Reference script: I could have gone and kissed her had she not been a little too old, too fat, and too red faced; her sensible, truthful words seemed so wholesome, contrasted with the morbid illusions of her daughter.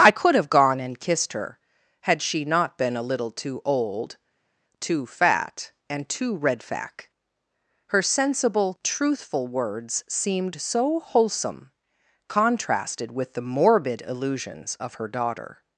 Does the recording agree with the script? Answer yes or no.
no